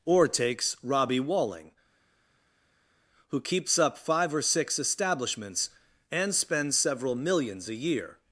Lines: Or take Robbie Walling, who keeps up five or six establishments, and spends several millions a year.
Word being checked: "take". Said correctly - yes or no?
no